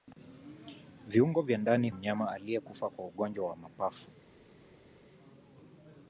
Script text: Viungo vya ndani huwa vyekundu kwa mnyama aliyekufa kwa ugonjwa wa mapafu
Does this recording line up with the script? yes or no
no